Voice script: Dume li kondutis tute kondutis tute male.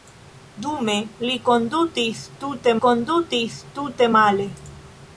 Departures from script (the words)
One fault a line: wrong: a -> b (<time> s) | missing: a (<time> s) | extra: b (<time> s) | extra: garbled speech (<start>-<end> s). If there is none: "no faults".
no faults